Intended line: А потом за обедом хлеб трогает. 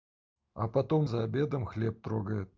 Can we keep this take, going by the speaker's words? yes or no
yes